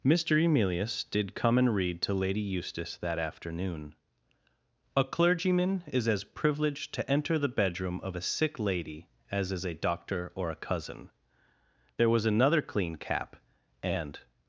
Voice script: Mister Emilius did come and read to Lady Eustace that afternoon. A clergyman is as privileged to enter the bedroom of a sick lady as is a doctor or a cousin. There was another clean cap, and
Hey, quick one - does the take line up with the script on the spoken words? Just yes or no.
yes